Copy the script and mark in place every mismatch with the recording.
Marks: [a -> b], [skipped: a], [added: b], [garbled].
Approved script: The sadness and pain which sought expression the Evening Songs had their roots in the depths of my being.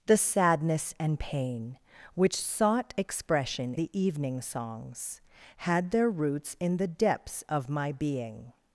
The sadness and pain which sought expression the Evening Songs had their roots in the depths of my being.